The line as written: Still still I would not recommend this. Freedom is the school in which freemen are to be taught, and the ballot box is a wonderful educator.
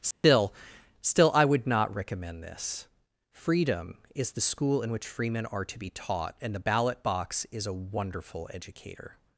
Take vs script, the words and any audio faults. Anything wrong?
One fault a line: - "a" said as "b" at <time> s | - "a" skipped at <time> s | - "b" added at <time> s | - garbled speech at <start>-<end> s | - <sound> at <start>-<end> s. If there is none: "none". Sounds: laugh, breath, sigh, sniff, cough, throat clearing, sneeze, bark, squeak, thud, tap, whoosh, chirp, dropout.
- dropout at 0.1-0.2 s